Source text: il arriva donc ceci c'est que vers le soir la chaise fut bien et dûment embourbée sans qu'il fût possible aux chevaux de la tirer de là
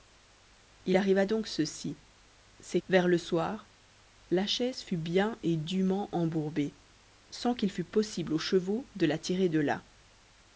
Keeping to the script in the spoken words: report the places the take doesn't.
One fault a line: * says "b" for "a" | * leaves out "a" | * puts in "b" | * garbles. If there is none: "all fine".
* leaves out "que"